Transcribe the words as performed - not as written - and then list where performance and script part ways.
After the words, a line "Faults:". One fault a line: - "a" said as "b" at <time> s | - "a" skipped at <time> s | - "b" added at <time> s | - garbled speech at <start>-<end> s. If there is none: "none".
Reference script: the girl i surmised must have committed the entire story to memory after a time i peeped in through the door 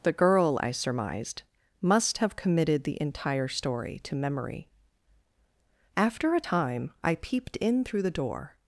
the girl i surmised must have committed the entire story to memory after a time i peeped in through the door
Faults:
none